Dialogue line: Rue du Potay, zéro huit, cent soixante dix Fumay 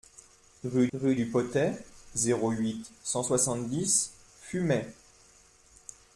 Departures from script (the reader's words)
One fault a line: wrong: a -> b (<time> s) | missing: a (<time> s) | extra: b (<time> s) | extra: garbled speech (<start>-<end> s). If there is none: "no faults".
extra: rue (0.9 s)